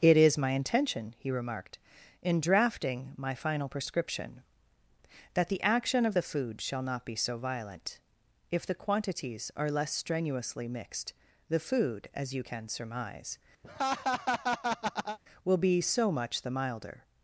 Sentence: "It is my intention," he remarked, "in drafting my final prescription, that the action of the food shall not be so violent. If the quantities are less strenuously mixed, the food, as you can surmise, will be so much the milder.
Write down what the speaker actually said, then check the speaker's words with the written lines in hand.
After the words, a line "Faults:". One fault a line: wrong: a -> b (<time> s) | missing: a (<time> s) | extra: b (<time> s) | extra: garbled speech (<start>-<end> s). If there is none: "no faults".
"It is my intention," he remarked, "in drafting my final prescription, that the action of the food shall not be so violent. If the quantities are less strenuously mixed, the food, as you can surmise, will be so much the milder.
Faults:
no faults